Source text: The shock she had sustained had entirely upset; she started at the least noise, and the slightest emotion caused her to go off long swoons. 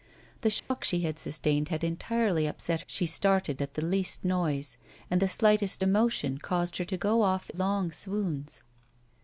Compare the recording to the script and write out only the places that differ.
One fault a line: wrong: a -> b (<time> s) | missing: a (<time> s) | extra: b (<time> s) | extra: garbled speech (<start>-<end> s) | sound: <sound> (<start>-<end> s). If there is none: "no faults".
sound: dropout (0.6-0.7 s)